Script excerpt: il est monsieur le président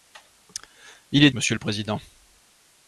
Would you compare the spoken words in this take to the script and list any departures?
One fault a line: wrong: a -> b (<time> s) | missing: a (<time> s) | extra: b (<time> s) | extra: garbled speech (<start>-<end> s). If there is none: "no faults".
no faults